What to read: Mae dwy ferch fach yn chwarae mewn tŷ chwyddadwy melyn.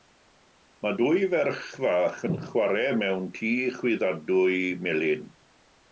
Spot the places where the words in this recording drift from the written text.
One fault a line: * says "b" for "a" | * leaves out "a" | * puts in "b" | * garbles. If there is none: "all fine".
all fine